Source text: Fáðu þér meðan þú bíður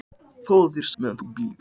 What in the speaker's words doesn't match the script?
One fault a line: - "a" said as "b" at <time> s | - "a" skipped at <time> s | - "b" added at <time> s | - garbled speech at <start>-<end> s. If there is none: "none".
none